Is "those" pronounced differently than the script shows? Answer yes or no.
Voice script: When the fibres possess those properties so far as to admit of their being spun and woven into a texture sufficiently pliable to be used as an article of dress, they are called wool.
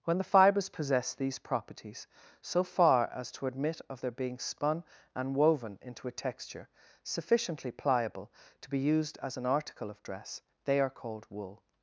yes